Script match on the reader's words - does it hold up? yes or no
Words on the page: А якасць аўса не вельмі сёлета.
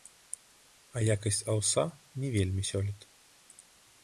yes